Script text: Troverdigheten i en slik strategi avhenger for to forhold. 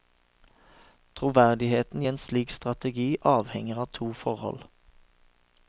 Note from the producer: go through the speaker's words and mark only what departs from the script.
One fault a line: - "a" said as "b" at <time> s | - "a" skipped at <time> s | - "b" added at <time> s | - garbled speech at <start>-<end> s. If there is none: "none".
- "for" said as "av" at 3.8 s